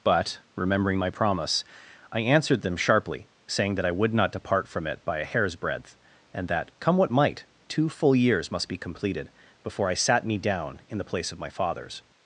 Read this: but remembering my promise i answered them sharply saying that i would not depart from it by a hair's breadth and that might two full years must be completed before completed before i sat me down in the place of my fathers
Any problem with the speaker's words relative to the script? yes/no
yes